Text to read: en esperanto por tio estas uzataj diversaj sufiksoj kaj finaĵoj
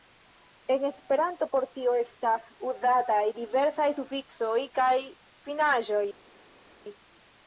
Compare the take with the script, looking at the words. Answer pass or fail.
pass